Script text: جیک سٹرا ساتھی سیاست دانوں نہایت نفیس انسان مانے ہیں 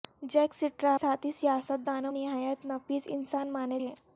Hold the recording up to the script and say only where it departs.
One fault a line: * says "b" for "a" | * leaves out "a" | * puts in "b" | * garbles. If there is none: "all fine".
all fine